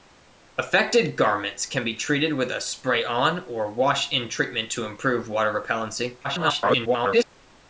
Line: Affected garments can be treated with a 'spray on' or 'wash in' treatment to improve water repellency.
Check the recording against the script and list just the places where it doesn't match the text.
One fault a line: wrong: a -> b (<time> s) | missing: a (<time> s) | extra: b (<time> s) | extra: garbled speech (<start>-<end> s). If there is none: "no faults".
extra: garbled speech (6.2-7.2 s)